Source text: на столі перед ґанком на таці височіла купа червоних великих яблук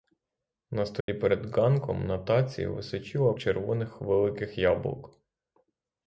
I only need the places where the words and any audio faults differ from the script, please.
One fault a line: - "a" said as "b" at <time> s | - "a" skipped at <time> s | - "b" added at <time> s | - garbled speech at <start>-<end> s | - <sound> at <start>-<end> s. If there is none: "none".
- dropout at 1.0-1.1 s
- "купа" skipped at 3.3 s